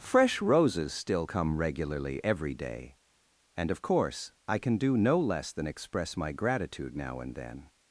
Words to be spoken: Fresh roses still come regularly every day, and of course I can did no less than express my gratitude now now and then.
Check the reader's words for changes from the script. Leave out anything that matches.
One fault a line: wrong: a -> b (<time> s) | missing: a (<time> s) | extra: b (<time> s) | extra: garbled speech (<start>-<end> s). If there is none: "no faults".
wrong: did -> do (4.8 s)
missing: now (7.2 s)